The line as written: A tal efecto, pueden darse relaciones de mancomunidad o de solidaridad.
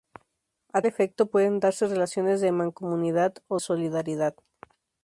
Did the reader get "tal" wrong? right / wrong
wrong